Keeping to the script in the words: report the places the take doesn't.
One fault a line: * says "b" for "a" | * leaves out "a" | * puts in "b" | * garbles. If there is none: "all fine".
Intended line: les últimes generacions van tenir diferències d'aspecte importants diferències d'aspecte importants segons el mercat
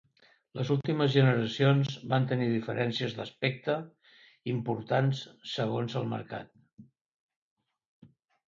* leaves out "diferències d'aspecte importants"